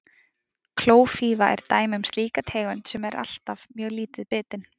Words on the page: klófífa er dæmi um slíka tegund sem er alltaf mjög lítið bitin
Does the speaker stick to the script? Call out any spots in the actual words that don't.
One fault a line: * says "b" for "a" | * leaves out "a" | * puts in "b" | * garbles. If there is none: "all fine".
all fine